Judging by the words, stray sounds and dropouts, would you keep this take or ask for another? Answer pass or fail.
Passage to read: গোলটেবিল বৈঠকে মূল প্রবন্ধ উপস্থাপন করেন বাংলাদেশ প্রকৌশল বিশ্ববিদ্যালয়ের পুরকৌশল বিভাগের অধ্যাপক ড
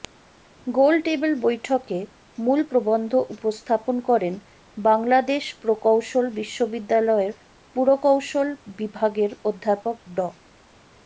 pass